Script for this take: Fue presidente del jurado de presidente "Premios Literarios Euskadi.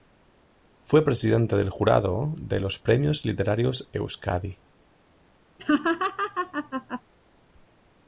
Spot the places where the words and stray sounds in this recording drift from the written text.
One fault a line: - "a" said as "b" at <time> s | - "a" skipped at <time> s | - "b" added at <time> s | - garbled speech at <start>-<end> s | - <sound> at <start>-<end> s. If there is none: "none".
- "presidente" said as "los" at 2.6 s
- laugh at 5.6-7.0 s